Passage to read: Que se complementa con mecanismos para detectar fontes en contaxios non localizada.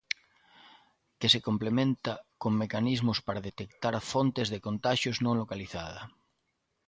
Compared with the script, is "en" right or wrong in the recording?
wrong